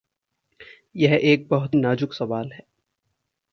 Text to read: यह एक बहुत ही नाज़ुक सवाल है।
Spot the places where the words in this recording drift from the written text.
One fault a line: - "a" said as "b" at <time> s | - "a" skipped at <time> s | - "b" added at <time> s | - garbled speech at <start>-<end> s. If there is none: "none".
- "ही" skipped at 1.8 s